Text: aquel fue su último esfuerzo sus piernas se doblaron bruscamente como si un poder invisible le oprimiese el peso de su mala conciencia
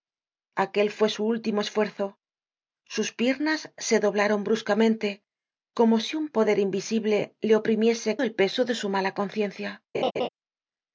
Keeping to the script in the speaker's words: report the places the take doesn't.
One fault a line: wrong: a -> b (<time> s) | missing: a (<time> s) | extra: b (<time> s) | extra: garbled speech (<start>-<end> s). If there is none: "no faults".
no faults